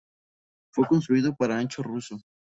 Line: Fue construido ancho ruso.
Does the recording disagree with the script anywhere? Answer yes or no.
yes